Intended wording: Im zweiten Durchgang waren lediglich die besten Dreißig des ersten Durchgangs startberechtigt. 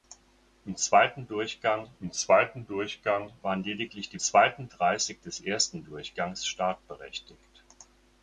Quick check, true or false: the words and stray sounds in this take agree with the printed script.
false